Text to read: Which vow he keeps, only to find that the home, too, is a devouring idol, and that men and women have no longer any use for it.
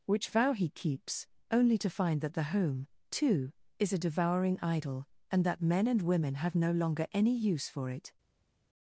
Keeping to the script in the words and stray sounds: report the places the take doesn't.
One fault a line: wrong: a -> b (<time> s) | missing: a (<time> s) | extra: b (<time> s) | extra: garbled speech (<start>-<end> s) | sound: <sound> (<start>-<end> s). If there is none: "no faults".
no faults